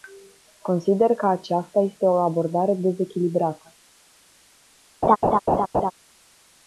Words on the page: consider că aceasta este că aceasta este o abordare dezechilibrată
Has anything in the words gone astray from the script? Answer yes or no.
yes